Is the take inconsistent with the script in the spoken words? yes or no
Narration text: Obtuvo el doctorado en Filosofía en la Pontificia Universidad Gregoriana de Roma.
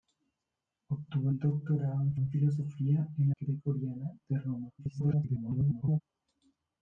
yes